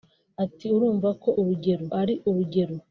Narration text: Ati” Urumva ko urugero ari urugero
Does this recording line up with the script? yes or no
yes